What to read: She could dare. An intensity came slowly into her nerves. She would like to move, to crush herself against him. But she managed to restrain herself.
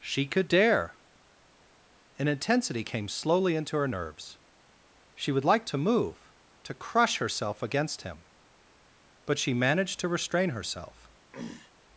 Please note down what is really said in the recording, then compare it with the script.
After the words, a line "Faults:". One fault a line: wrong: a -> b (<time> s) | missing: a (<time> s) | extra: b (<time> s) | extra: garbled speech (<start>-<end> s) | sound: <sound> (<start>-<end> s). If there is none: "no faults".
She could dare. An intensity came slowly into her nerves. She would like to move, to crush herself against him. But she managed to restrain herself.
Faults:
sound: throat clearing (11.3-11.7 s)